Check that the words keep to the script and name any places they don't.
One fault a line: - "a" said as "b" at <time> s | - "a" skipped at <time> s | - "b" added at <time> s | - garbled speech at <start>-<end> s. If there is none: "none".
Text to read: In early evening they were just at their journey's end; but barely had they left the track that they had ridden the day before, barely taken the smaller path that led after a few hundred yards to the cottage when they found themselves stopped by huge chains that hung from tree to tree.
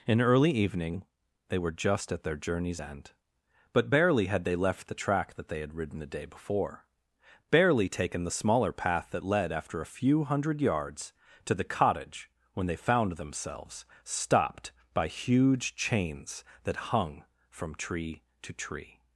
none